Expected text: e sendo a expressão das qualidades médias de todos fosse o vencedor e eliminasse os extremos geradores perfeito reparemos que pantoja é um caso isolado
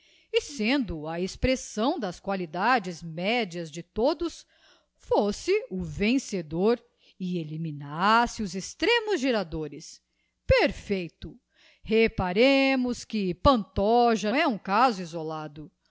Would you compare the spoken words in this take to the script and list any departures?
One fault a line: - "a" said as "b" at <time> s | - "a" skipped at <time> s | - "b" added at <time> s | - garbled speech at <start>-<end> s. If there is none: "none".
none